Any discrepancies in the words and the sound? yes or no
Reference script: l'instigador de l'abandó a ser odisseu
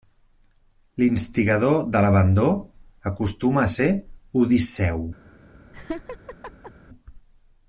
yes